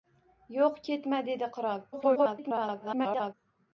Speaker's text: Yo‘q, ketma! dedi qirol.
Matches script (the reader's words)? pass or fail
fail